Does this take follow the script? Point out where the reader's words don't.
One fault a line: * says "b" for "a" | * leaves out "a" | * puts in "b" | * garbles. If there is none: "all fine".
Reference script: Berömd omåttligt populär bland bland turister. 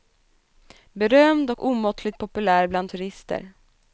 * puts in "och"
* leaves out "bland"